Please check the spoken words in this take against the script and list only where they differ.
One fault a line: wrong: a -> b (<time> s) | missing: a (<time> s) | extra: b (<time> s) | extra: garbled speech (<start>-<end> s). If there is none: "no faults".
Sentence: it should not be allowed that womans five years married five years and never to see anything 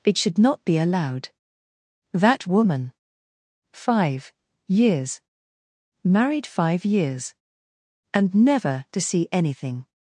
wrong: womans -> woman (2.5 s)